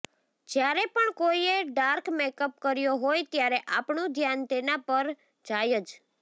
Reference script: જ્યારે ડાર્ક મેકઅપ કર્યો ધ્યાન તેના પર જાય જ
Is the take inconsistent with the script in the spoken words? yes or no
yes